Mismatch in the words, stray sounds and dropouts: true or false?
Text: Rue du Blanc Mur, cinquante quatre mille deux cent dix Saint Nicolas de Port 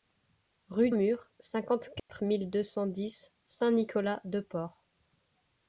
true